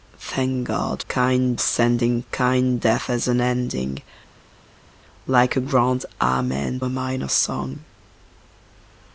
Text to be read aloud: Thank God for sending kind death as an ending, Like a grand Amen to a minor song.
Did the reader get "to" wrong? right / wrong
wrong